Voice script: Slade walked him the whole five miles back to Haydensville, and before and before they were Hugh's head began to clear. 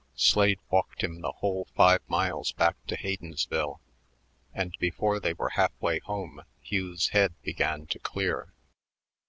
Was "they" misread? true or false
true